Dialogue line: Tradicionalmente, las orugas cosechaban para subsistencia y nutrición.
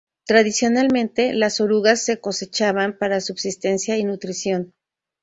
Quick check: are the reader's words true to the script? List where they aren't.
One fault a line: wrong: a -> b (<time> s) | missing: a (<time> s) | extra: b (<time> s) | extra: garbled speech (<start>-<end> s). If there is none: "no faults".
extra: se (2.0 s)